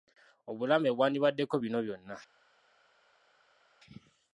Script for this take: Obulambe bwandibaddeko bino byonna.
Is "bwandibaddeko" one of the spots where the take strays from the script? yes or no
no